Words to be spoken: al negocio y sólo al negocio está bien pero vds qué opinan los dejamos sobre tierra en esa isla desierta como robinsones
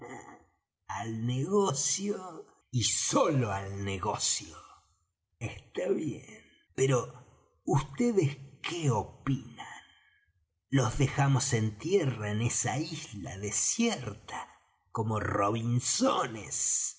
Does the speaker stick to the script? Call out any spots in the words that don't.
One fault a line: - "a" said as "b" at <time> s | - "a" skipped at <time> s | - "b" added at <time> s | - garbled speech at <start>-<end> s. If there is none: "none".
- "sobre" said as "en" at 11.5 s